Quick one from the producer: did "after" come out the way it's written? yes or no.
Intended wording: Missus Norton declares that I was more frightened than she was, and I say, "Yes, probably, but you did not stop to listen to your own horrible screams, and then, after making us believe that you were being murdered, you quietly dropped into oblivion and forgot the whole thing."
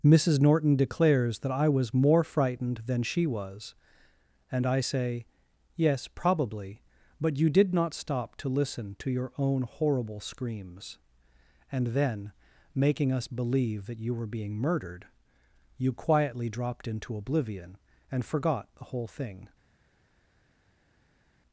no